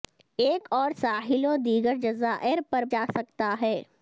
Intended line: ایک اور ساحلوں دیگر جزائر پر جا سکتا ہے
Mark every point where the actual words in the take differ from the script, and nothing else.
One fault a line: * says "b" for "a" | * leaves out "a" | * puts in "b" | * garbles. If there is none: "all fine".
all fine